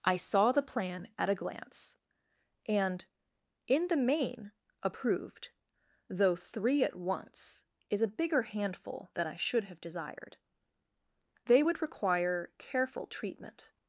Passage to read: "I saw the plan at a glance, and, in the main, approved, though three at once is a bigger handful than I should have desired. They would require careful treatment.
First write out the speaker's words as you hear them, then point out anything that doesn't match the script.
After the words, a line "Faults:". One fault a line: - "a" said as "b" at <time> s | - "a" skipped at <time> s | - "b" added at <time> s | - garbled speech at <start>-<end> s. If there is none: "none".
"I saw the plan at a glance, and, in the main, approved, though three at once is a bigger handful than I should have desired. They would require careful treatment.
Faults:
none